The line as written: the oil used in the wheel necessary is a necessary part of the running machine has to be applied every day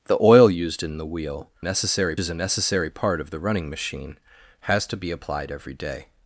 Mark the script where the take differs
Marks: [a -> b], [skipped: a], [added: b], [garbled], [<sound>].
the oil used in the wheel necessary is a necessary part of the running machine has to be applied every day